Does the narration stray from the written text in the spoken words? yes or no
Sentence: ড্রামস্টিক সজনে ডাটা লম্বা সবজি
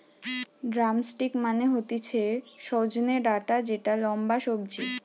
yes